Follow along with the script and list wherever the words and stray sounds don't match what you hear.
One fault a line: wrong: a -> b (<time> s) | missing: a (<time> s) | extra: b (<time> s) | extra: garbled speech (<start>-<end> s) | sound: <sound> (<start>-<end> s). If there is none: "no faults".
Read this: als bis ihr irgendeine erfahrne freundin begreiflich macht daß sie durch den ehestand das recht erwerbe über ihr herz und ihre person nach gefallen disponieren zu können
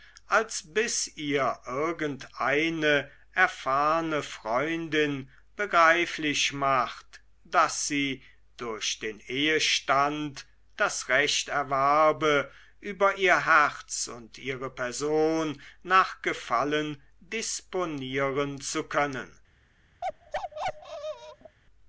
sound: bark (20.0-21.6 s)